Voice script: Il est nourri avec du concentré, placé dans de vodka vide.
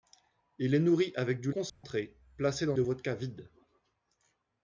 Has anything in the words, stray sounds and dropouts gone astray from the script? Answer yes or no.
yes